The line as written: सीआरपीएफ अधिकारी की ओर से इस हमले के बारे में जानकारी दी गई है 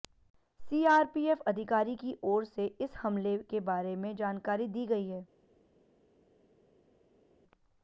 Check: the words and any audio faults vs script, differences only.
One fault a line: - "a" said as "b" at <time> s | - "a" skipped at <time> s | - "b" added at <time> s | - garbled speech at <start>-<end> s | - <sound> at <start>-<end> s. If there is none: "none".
none